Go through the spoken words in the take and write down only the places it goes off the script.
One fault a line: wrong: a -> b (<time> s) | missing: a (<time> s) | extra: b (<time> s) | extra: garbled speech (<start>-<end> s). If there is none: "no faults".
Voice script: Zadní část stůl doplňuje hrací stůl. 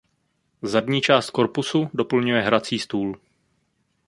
wrong: stůl -> korpusu (1.3 s)